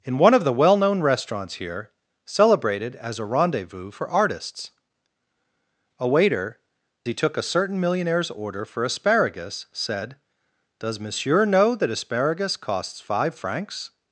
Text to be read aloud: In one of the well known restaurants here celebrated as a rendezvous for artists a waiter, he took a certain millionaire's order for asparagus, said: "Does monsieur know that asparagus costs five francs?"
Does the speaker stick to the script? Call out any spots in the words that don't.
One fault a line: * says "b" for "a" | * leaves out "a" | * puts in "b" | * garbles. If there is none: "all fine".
all fine